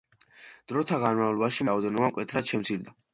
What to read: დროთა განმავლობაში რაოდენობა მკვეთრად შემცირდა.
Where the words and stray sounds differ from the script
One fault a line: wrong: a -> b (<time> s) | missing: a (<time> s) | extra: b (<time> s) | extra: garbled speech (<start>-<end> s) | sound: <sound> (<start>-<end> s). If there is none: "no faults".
no faults